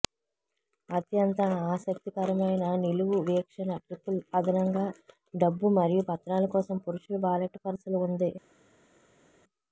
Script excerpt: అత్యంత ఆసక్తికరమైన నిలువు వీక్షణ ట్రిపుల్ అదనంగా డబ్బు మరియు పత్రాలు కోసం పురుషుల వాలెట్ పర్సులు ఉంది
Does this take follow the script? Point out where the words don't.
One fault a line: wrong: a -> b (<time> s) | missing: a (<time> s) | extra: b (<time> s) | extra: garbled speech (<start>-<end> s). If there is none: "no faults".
no faults